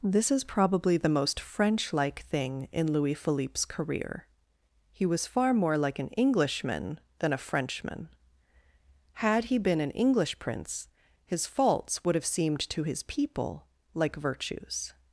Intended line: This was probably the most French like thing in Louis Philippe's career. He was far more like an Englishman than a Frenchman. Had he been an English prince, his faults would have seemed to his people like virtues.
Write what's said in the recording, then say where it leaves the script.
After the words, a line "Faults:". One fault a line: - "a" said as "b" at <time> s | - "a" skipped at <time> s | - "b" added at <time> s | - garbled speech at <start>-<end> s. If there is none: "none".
This is probably the most French like thing in Louis Philippe's career. He was far more like an Englishman than a Frenchman. Had he been an English prince, his faults would have seemed to his people like virtues.
Faults:
- "was" said as "is" at 0.3 s